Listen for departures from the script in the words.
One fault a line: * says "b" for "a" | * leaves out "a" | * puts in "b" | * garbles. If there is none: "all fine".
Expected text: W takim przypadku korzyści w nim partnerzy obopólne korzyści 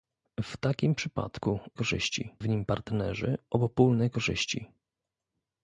all fine